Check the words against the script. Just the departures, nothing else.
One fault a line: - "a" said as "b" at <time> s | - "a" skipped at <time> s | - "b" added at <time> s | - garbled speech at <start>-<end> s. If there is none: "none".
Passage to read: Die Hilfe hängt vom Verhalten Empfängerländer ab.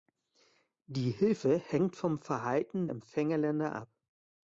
none